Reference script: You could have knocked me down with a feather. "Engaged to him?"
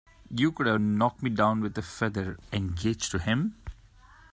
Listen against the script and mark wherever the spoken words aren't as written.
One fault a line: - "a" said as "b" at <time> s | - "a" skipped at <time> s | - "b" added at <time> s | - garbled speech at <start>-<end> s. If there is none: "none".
none